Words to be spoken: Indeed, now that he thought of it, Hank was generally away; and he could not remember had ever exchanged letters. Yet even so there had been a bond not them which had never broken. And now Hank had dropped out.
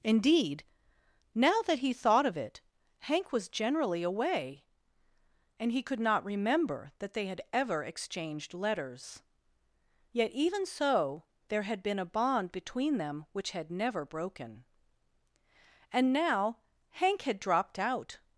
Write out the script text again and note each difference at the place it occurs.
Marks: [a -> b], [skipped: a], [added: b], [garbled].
Indeed, now that he thought of it, Hank was generally away; and he could not remember [added: that they] had ever exchanged letters. Yet even so there had been a bond [not -> between] them which had never broken. And now Hank had dropped out.